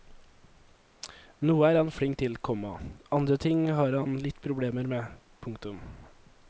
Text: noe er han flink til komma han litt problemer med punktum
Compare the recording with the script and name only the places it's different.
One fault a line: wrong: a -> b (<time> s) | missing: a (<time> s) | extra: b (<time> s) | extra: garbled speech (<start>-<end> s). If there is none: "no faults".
extra: andre ting har (3.1 s)